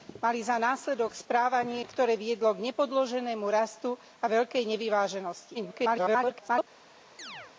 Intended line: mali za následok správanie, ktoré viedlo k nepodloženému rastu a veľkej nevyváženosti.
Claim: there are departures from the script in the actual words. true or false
true